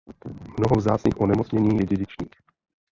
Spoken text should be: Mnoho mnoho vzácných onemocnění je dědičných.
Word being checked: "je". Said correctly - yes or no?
yes